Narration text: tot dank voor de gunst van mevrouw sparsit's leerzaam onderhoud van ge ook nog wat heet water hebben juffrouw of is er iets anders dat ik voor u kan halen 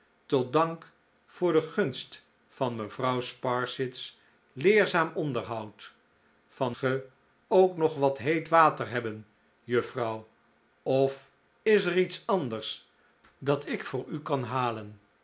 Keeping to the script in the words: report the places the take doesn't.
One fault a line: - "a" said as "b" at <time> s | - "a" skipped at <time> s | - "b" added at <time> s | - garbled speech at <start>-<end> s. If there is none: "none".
none